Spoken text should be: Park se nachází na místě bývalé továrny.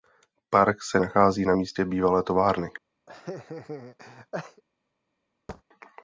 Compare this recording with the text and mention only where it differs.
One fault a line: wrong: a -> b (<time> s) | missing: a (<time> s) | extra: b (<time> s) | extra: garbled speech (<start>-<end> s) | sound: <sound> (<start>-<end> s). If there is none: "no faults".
sound: laugh (3.1-4.6 s)
sound: thud (5.5-5.6 s)